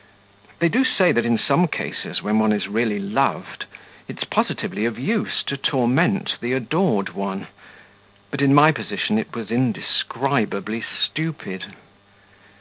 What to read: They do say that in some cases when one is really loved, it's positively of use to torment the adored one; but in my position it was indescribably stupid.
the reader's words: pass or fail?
pass